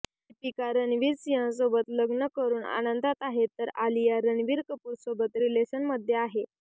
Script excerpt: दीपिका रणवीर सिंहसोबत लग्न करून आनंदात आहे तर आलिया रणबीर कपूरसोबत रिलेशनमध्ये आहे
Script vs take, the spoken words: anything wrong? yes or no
no